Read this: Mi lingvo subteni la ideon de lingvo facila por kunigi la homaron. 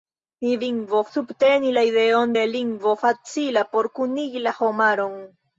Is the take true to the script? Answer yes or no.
yes